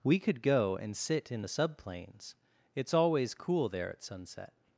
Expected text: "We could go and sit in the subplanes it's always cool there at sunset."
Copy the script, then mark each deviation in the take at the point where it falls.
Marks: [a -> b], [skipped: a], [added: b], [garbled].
"We could go and sit in the subplanes it's always cool there at sunset."